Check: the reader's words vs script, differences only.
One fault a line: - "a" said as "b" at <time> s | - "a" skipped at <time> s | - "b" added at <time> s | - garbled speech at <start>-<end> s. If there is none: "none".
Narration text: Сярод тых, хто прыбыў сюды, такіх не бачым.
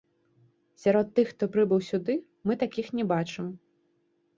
- "мы" added at 2.5 s